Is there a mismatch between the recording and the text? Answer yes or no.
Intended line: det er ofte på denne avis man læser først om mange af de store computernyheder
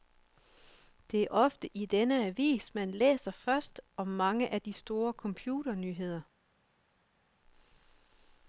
yes